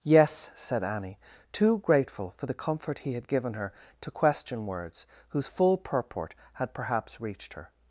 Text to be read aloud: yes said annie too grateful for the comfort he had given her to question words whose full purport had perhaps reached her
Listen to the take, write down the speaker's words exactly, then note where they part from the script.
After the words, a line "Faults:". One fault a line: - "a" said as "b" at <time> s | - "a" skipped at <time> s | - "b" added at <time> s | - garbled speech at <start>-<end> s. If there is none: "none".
yes said annie too grateful for the comfort he had given her to question words whose full purport had perhaps reached her
Faults:
none